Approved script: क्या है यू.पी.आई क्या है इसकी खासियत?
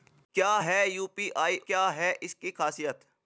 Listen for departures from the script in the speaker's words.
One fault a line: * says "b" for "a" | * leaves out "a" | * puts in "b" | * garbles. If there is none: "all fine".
all fine